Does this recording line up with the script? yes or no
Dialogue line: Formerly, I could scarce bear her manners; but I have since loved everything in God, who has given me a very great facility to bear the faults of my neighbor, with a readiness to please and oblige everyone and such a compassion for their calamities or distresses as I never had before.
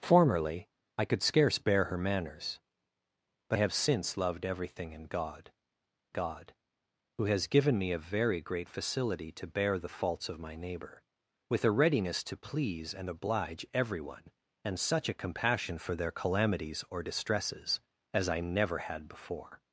no